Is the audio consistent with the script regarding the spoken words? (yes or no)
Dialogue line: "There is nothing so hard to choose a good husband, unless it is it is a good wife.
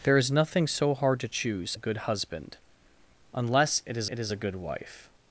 yes